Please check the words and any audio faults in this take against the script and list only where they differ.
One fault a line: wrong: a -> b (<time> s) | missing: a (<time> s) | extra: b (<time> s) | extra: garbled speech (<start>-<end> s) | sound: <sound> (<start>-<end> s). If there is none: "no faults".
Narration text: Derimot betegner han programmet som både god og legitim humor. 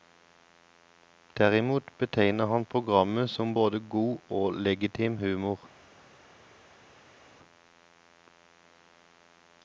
no faults